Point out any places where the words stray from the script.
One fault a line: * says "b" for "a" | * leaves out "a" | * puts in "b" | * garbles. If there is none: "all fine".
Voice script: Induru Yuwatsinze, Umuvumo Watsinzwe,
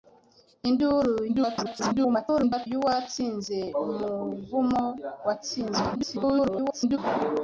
* garbles
* garbles